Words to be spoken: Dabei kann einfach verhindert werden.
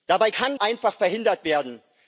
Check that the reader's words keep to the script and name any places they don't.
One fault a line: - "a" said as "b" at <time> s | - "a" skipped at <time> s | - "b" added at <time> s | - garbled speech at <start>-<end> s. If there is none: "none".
none